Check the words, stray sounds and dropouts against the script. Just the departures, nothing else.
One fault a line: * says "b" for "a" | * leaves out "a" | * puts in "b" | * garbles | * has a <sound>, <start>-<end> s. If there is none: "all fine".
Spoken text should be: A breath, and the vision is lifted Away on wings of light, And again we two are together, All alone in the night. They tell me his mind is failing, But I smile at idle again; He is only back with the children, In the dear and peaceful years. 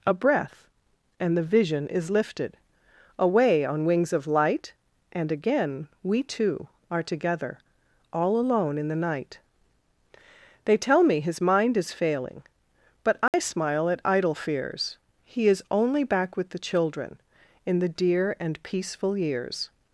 * has a dropout, 13.3-13.3 s
* says "fears" for "again"